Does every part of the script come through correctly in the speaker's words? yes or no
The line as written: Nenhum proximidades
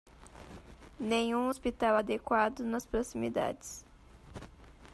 no